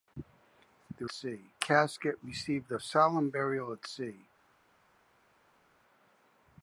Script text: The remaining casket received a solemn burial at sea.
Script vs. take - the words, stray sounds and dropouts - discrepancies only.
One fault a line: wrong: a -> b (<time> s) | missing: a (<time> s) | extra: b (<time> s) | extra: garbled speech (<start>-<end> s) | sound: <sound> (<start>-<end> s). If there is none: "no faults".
wrong: remaining -> sea (1.1 s)